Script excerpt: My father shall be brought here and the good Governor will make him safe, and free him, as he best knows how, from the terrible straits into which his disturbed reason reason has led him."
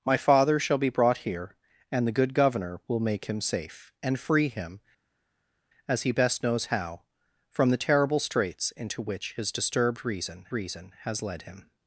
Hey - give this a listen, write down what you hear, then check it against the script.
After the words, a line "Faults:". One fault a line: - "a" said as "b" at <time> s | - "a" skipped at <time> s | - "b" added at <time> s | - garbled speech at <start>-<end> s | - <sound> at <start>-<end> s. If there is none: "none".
My father shall be brought here and the good Governor will make him safe, and free him, as he best knows how, from the terrible straits into which his disturbed reason reason has led him."
Faults:
none